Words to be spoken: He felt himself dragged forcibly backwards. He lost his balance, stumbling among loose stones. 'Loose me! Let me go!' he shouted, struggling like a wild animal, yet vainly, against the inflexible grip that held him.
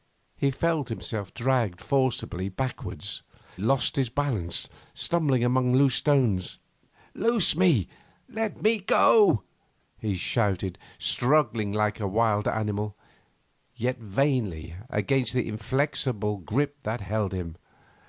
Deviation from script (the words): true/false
true